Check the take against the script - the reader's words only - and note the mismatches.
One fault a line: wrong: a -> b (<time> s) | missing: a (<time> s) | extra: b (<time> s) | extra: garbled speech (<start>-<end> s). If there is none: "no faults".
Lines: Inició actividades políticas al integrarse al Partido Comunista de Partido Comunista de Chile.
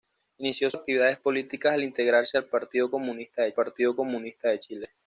no faults